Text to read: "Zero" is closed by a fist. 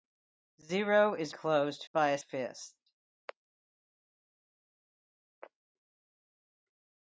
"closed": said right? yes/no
yes